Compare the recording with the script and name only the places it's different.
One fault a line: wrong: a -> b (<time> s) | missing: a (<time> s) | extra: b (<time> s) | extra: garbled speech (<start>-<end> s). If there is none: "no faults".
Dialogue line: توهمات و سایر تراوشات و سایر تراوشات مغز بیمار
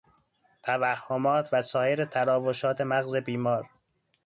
missing: و سایر تراوشات (2.8 s)